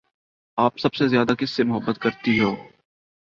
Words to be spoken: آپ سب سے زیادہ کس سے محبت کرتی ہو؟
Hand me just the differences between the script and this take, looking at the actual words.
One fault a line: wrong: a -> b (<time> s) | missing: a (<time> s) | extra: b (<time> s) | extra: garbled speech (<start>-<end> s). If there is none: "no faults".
no faults